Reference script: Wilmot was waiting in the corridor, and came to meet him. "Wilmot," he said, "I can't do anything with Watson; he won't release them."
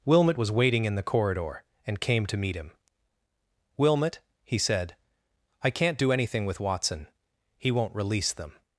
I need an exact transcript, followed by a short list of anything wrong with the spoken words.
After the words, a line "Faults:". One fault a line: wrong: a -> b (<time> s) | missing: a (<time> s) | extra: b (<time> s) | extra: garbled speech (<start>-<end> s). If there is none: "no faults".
Wilmot was waiting in the corridor, and came to meet him. "Wilmot," he said, "I can't do anything with Watson; he won't release them."
Faults:
no faults